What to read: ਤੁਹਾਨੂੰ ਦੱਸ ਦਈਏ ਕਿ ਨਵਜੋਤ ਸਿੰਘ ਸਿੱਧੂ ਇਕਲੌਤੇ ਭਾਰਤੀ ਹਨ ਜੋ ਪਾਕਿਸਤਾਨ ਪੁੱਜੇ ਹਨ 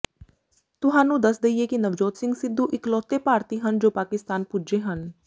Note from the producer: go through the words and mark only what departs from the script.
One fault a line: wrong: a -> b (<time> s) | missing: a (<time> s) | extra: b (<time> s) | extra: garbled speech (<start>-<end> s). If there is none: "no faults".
no faults